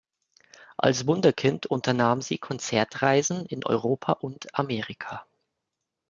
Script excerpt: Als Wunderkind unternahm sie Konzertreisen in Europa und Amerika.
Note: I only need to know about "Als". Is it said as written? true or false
true